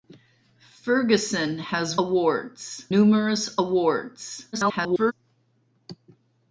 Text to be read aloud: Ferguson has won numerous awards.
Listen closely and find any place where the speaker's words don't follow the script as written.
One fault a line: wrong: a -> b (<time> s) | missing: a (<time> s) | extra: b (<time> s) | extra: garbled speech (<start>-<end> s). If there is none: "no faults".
wrong: won -> awards (2.0 s)
extra: garbled speech (4.5-5.1 s)